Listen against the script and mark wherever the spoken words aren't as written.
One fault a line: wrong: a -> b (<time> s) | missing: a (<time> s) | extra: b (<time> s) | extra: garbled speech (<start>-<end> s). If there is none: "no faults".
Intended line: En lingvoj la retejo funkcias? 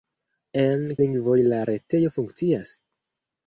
no faults